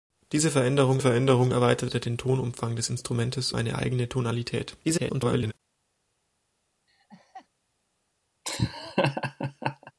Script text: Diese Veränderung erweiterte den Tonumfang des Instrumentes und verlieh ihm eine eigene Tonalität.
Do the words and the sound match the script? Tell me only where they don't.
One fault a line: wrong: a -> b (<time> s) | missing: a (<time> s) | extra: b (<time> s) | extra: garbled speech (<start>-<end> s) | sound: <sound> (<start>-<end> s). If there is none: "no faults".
extra: Veränderung (1.0 s)
missing: und verlieh ihm (3.5 s)
extra: garbled speech (4.8-5.5 s)
sound: laugh (6.9-7.5 s)
sound: laugh (8.4-9.9 s)